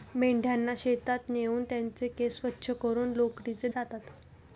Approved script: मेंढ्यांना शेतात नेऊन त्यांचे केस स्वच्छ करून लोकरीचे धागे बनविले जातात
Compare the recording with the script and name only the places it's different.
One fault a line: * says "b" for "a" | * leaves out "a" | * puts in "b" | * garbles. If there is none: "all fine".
* leaves out "धागे बनविले"